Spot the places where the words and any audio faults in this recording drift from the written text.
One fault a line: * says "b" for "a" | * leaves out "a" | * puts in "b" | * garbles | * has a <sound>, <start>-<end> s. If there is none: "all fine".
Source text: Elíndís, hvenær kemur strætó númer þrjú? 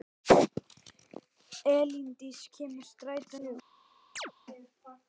* leaves out "hvenær"
* leaves out "númer"
* has a chirp, 4.2-4.3 s